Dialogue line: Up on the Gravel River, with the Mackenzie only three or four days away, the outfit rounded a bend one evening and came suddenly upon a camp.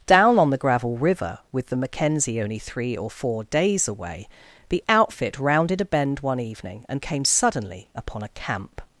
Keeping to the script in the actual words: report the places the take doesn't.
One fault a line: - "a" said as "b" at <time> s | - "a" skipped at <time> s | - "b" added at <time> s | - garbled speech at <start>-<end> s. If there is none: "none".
- "Up" said as "Down" at 0.1 s